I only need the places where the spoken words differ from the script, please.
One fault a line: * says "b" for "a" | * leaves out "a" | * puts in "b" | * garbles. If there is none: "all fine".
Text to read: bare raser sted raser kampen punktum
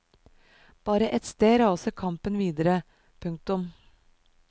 * says "ett" for "raser"
* puts in "videre"